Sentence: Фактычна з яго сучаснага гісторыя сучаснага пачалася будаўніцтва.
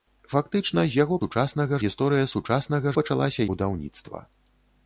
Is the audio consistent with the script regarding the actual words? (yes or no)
yes